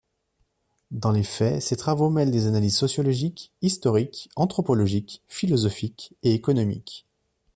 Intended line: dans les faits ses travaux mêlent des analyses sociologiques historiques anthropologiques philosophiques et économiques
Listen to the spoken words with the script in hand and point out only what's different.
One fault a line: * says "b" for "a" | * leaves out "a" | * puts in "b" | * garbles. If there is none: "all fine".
all fine